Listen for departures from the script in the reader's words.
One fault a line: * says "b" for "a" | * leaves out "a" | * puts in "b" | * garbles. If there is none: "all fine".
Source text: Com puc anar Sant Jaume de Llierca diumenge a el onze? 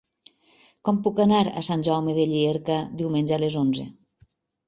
* puts in "a"
* says "les" for "el"